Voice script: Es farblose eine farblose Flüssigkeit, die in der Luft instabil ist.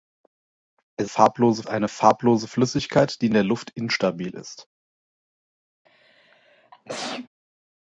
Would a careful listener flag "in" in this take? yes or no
no